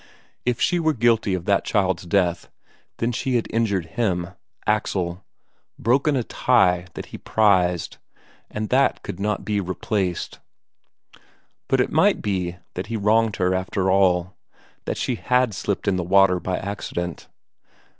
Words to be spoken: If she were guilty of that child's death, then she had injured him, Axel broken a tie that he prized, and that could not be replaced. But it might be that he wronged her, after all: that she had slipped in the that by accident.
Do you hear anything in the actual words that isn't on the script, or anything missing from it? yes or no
yes